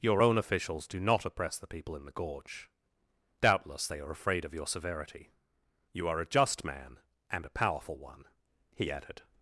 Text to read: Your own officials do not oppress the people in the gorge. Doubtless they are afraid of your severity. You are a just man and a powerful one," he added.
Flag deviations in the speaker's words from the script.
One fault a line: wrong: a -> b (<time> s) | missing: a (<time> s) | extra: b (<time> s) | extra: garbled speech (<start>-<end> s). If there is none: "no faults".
no faults